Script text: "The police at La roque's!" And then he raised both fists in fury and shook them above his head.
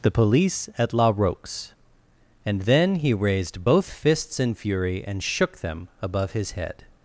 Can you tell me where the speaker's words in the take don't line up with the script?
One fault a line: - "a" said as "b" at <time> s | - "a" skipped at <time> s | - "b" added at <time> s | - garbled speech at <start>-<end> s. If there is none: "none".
none